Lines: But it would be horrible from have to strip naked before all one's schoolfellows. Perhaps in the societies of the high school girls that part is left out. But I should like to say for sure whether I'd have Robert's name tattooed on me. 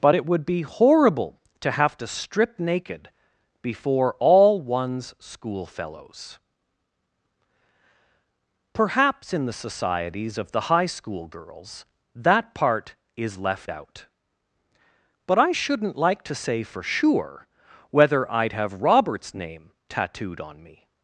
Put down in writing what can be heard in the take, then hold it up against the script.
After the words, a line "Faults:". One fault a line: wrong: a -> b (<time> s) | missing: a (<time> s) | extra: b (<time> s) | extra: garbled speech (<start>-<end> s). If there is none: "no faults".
But it would be horrible to have to strip naked before all one's schoolfellows. Perhaps in the societies of the high school girls that part is left out. But I shouldn't like to say for sure whether I'd have Robert's name tattooed on me.
Faults:
wrong: from -> to (1.6 s)
wrong: should -> shouldn't (15.5 s)